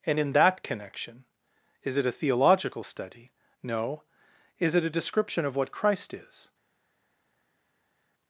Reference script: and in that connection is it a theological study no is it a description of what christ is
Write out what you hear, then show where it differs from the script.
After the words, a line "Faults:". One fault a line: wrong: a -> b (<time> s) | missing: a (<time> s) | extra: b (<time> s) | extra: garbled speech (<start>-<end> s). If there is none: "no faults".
and in that connection is it a theological study no is it a description of what christ is
Faults:
no faults